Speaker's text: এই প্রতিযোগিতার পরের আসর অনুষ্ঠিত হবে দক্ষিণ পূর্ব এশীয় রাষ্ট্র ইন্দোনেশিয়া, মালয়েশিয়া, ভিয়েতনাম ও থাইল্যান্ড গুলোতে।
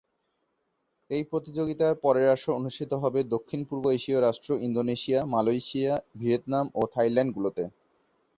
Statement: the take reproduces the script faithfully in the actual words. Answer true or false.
true